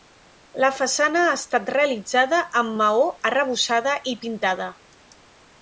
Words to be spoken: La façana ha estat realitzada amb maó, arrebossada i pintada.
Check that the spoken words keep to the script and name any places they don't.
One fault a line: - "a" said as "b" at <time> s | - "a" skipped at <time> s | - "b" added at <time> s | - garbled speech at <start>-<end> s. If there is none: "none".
none